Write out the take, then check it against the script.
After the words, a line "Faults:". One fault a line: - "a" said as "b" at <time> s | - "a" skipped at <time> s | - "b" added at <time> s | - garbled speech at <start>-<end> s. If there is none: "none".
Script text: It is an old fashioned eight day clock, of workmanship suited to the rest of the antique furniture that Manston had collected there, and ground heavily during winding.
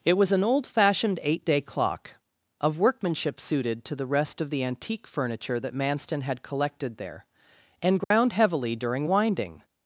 It was an old fashioned eight day clock, of workmanship suited to the rest of the antique furniture that Manston had collected there, and ground heavily during winding.
Faults:
- "is" said as "was" at 0.1 s